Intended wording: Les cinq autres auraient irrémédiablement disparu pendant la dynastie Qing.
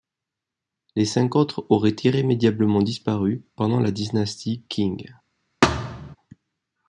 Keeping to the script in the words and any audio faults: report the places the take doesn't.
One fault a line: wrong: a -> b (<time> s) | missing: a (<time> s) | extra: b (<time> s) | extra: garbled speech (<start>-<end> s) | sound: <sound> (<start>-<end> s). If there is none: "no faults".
sound: thud (5.6-6.2 s)